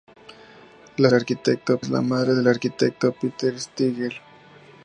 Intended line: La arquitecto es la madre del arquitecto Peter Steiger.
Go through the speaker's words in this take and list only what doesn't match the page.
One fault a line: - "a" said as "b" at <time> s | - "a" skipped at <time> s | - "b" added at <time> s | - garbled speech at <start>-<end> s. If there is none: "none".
none